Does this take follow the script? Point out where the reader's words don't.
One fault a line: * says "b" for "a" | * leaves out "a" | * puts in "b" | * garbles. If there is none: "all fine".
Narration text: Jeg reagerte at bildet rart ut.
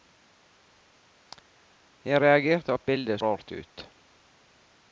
all fine